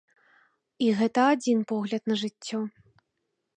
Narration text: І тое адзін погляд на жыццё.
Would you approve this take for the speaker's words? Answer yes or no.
no